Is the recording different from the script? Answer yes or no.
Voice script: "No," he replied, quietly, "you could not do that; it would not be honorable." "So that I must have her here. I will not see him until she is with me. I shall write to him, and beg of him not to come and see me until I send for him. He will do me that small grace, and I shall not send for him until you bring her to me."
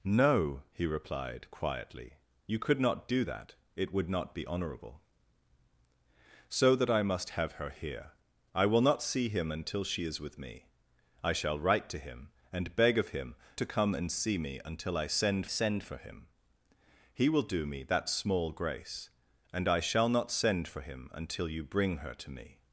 yes